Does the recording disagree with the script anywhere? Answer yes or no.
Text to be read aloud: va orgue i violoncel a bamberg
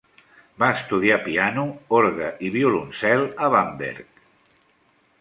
yes